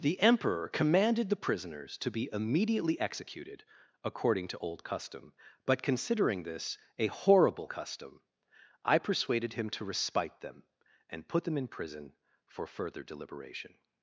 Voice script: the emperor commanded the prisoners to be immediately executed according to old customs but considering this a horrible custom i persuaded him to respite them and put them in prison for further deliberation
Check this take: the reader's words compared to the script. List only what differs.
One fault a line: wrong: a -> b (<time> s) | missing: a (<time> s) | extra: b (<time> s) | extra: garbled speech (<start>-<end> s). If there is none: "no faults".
wrong: customs -> custom (4.8 s)